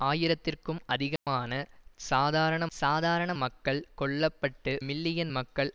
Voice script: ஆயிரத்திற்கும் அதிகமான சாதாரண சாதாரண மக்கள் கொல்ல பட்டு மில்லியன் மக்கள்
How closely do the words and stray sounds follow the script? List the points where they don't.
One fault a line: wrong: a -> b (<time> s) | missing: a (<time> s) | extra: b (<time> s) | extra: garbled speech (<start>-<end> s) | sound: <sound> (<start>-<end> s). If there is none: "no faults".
sound: dropout (1.2-1.3 s)